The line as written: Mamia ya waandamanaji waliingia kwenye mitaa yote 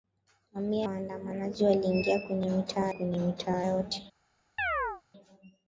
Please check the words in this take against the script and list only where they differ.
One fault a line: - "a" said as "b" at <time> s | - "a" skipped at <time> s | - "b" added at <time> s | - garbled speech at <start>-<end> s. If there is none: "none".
- "ya" skipped at 0.9 s
- "kwenye mitaa" added at 2.9 s